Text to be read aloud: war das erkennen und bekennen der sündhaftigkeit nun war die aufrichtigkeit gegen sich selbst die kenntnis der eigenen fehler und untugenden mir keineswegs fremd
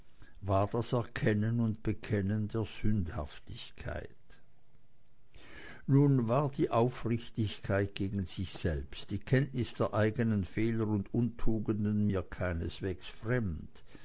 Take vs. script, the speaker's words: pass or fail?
pass